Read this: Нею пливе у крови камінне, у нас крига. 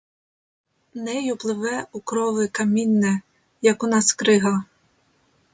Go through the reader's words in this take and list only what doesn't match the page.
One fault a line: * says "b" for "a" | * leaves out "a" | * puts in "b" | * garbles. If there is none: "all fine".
* puts in "як"